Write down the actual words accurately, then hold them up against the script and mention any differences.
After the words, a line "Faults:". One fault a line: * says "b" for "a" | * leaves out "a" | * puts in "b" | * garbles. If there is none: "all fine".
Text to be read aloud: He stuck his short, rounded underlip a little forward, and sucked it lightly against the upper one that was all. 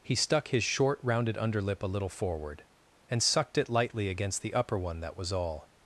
He stuck his short, rounded underlip a little forward, and sucked it lightly against the upper one that was all.
Faults:
all fine